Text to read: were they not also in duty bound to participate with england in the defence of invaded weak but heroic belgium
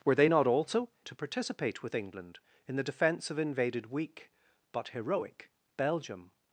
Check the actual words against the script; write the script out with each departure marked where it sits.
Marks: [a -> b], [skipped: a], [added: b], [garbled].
were they not also [skipped: in duty bound] to participate with england in the defence of invaded weak but heroic belgium